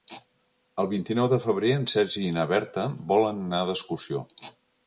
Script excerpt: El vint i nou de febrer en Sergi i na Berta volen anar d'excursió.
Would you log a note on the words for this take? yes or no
no